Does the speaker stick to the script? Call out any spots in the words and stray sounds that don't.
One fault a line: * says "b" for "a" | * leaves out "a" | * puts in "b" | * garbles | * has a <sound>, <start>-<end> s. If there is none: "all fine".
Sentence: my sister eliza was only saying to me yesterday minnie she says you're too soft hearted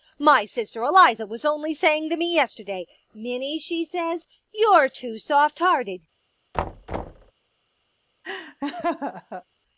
* has a thud, 6.5-7.3 s
* has a laugh, 8.2-9.4 s